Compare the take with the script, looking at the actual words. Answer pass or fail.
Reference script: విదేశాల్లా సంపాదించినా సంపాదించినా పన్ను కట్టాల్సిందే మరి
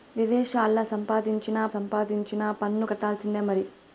pass